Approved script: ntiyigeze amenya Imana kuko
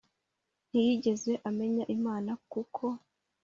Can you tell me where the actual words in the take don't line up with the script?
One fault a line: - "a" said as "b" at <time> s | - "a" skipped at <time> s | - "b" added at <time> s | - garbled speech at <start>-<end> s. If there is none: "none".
none